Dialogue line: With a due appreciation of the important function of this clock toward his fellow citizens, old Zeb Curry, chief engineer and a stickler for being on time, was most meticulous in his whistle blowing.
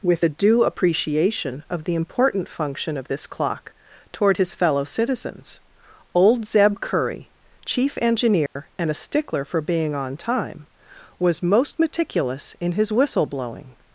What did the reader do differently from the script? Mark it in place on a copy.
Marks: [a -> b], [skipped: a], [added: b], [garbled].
With a due appreciation of the important function of this clock toward his fellow citizens, old Zeb Curry, chief engineer and a stickler for being on time, was most meticulous in his whistle blowing.